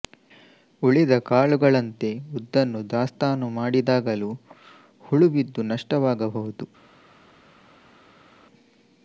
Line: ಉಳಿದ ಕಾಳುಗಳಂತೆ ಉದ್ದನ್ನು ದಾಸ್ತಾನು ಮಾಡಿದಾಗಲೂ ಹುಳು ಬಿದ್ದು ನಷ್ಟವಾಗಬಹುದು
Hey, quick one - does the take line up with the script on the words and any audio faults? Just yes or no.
yes